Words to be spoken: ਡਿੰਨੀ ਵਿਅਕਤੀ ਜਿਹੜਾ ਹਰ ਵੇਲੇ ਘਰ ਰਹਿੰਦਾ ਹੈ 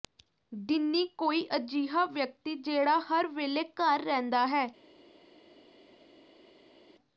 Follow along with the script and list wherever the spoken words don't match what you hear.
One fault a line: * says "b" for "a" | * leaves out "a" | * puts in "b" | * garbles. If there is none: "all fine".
* puts in "ਕੋਈ ਅਜਿਹਾ"